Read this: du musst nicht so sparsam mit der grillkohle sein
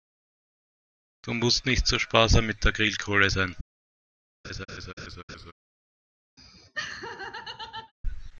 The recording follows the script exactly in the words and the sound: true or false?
false